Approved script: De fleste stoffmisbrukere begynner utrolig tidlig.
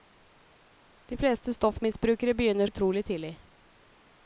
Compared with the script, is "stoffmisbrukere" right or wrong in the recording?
right